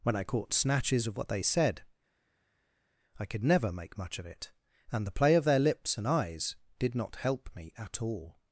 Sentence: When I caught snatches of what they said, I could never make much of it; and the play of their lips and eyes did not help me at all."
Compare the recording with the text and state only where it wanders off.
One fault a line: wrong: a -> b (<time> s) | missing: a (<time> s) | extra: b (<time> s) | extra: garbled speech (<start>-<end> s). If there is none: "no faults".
no faults